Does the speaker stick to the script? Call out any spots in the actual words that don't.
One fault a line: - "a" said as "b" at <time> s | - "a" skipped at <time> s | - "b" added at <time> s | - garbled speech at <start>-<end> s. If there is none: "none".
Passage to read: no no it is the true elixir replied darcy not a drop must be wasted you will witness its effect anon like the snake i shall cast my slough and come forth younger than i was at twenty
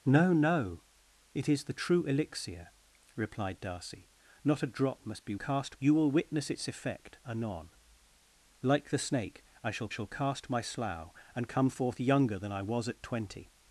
- "wasted" said as "cast" at 5.3 s
- "shall" added at 9.9 s